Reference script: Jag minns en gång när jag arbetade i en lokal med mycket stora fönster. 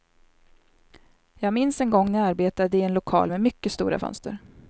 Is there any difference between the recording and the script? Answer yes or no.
no